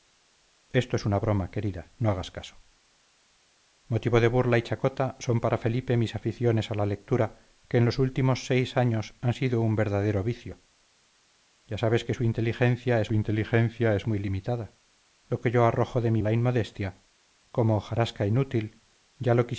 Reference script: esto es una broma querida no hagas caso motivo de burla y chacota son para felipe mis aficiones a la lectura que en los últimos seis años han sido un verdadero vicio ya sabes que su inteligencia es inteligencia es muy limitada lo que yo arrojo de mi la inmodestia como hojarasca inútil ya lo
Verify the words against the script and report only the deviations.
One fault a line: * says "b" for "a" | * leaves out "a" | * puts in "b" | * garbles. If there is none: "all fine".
all fine